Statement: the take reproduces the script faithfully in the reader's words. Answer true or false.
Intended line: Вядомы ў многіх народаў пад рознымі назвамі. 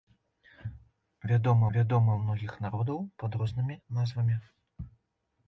false